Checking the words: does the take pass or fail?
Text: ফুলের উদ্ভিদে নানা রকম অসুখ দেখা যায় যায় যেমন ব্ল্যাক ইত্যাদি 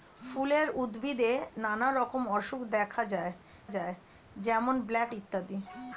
pass